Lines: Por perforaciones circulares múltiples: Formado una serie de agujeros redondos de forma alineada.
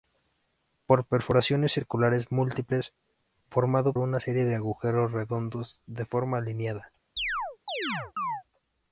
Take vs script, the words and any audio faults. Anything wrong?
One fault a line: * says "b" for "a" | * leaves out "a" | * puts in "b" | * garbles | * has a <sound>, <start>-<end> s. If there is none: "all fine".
* has a chirp, 7.2-8.4 s